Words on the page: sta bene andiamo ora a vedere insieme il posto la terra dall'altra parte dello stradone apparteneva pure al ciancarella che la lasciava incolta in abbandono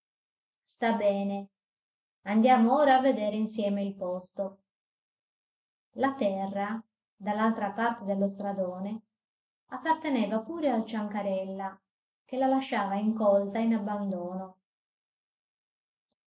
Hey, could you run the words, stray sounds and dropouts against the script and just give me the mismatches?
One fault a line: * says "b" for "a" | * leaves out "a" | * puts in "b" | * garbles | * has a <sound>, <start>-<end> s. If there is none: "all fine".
all fine